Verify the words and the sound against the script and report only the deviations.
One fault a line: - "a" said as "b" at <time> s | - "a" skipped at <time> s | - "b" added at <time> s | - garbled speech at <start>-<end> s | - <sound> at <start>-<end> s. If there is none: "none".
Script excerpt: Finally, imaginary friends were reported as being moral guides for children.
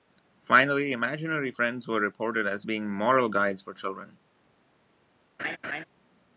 - laugh at 5.4-5.8 s